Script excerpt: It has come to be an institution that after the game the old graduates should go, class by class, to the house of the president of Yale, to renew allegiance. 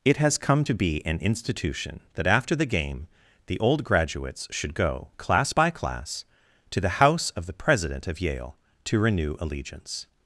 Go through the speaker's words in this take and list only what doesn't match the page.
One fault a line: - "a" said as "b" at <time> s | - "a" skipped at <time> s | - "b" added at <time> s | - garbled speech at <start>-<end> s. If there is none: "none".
none